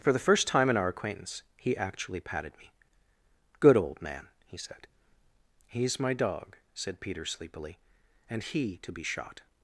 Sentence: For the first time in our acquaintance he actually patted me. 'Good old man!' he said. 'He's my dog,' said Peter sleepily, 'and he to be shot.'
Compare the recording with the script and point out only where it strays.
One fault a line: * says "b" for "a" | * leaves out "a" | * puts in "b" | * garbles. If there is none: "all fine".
all fine